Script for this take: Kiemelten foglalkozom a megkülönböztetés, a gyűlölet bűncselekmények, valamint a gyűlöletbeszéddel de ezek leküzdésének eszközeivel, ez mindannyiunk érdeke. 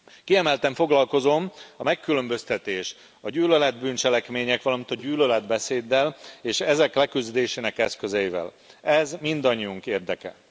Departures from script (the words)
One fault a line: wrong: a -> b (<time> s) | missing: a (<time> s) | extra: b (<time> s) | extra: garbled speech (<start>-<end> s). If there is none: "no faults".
wrong: de -> és (6.4 s)